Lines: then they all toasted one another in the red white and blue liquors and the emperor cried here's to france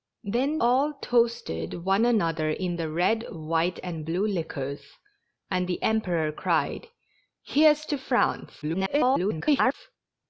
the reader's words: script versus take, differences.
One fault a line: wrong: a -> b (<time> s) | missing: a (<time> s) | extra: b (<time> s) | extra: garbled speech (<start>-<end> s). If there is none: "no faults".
missing: they (0.6 s)
extra: garbled speech (8.6-9.7 s)